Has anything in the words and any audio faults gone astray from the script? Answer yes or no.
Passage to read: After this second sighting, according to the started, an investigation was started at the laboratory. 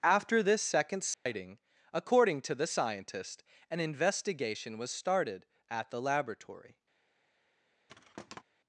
yes